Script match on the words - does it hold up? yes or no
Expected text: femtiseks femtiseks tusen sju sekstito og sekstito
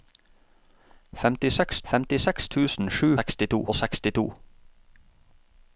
yes